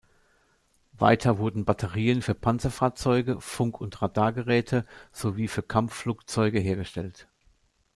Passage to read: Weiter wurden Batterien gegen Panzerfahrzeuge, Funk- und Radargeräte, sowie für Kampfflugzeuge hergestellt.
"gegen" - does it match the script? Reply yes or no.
no